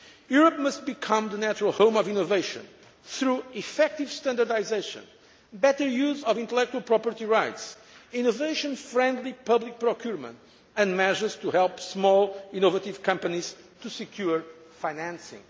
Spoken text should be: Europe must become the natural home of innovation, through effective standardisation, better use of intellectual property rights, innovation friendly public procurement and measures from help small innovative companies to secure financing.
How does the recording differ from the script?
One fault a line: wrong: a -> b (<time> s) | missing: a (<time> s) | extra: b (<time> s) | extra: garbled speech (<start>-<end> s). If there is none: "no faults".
wrong: from -> to (11.4 s)